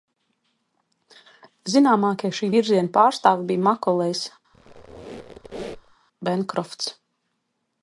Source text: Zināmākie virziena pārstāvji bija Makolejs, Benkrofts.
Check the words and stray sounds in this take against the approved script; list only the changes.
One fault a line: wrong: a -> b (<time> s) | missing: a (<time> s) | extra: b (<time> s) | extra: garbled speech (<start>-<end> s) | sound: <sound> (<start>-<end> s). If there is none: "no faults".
extra: šī (2.4 s)
sound: squeak (4.5-6.0 s)